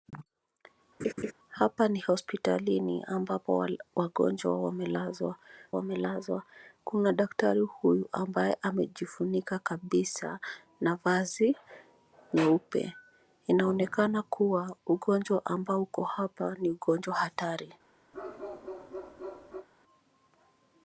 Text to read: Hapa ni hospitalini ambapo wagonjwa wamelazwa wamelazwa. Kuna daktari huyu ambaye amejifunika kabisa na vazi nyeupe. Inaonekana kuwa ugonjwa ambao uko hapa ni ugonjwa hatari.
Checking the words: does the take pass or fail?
pass